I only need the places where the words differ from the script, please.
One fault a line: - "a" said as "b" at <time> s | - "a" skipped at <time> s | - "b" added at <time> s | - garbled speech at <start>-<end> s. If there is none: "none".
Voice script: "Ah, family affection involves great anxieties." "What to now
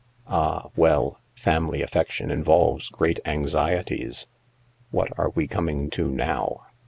- "well" added at 0.8 s
- "are we coming" added at 5.2 s